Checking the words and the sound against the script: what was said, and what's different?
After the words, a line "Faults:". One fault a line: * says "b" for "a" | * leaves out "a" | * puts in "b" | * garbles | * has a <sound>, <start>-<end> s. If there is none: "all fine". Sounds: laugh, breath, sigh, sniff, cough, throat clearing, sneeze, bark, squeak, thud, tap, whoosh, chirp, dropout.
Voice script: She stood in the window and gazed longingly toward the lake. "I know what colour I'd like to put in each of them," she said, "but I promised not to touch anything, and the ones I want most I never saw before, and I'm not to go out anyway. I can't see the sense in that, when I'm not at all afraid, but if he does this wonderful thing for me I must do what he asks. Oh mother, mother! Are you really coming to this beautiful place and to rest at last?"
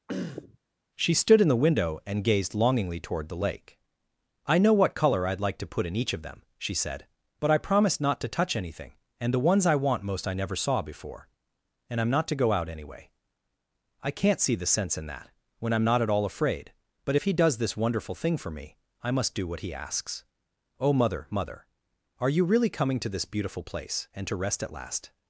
She stood in the window and gazed longingly toward the lake. "I know what colour I'd like to put in each of them," she said, "but I promised not to touch anything, and the ones I want most I never saw before, and I'm not to go out anyway. I can't see the sense in that, when I'm not at all afraid, but if he does this wonderful thing for me I must do what he asks. Oh mother, mother! Are you really coming to this beautiful place and to rest at last?"
Faults:
* has a throat clearing, 0.1-0.6 s